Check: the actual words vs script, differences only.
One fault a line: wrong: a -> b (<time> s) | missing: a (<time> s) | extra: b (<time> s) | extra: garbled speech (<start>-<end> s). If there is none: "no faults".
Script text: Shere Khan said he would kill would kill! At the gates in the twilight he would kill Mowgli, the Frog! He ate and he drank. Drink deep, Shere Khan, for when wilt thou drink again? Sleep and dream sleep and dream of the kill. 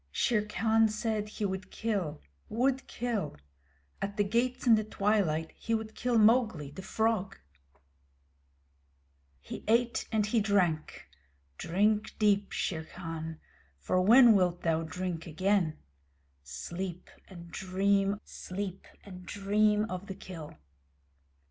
no faults